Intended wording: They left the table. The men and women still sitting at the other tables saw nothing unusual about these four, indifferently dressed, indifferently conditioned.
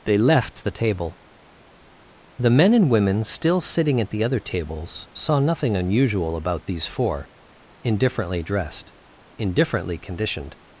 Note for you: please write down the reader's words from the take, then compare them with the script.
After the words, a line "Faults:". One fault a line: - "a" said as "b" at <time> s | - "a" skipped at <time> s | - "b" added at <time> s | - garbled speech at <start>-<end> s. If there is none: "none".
They left the table. The men and women still sitting at the other tables saw nothing unusual about these four, indifferently dressed, indifferently conditioned.
Faults:
none